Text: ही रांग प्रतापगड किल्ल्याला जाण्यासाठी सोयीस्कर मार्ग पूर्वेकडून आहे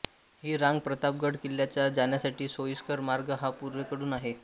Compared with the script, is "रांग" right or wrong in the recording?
right